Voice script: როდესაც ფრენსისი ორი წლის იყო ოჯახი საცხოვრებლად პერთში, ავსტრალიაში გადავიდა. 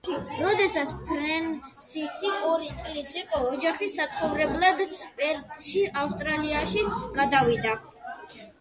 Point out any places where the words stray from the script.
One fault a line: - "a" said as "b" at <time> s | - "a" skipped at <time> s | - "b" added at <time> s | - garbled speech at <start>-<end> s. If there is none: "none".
none